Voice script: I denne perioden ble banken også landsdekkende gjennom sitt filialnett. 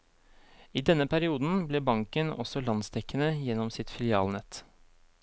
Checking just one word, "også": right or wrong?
right